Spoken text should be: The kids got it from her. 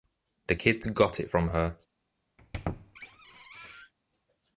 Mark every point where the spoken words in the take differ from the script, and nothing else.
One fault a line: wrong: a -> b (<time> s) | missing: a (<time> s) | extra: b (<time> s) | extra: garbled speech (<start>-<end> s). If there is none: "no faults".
no faults